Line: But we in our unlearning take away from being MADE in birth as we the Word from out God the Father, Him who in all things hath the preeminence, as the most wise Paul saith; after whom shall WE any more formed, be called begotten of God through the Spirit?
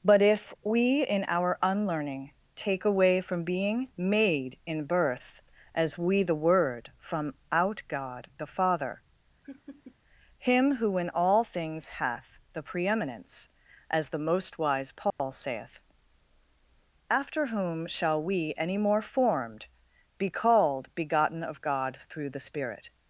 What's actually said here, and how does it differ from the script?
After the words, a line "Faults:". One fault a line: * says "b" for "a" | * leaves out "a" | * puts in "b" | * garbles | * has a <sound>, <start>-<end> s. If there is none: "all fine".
But if we in our unlearning take away from being MADE in birth as we the Word from out God the Father, Him who in all things hath the preeminence, as the most wise Paul saith; after whom shall WE any more formed, be called begotten of God through the Spirit?
Faults:
* puts in "if"
* has a laugh, 9.4-10.0 s
* has a dropout, 15.1-15.2 s